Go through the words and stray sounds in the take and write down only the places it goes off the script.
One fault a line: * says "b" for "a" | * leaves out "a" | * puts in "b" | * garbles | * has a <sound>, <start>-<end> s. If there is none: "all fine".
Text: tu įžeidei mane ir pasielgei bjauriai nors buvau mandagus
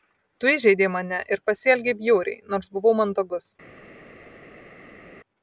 all fine